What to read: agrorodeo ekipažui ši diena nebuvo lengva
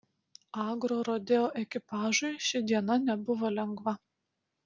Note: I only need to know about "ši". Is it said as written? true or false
true